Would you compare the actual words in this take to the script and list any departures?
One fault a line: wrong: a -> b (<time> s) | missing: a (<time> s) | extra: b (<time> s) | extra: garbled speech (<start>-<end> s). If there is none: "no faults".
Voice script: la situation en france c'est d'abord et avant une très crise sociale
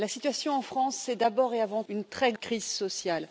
no faults